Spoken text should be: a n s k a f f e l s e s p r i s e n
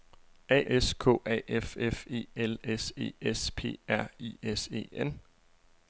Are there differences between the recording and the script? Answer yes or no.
yes